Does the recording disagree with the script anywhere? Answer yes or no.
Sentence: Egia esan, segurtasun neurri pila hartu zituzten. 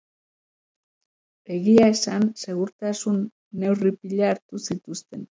no